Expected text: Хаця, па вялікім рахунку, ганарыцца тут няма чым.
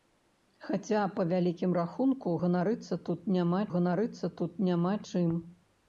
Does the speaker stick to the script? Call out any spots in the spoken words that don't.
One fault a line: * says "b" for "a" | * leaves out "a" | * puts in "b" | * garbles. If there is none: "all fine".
* puts in "ганарыцца тут няма"